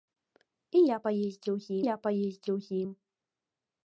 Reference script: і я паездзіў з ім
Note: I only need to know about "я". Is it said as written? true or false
true